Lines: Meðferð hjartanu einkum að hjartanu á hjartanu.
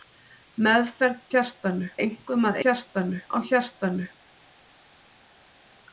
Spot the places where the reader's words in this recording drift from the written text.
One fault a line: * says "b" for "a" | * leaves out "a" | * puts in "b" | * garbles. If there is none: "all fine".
all fine